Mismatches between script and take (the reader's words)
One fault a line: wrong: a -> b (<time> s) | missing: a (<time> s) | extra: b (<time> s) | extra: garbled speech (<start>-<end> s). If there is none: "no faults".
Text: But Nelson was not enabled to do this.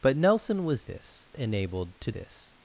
wrong: not -> this (0.8 s)
missing: do (2.1 s)